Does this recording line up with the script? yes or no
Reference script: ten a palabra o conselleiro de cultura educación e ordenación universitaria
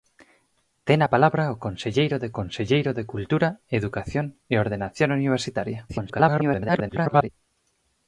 no